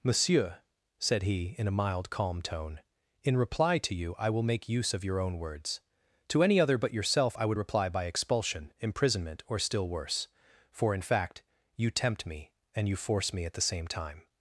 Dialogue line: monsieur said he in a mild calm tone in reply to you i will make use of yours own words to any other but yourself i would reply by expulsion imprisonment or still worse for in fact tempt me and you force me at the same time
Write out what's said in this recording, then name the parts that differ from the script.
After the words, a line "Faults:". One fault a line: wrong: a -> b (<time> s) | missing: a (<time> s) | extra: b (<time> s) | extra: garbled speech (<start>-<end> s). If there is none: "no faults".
monsieur said he in a mild calm tone in reply to you i will make use of your own words to any other but yourself i would reply by expulsion imprisonment or still worse for in fact you tempt me and you force me at the same time
Faults:
wrong: yours -> your (5.0 s)
extra: you (11.8 s)